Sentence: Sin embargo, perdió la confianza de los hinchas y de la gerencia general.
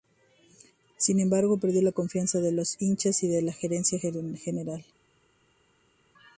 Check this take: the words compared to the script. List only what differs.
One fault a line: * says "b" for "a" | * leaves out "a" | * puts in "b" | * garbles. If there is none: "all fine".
all fine